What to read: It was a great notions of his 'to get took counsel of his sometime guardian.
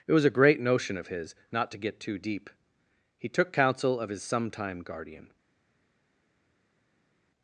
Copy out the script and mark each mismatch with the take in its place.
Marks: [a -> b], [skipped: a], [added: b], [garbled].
It was a great [notions -> notion] of his [added: not] 'to get [added: too deep He] took counsel of his sometime guardian.